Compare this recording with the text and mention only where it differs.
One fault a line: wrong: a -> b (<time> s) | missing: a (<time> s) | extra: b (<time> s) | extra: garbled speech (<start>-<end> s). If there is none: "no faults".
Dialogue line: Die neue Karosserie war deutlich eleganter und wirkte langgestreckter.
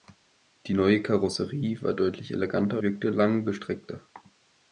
missing: und (2.8 s)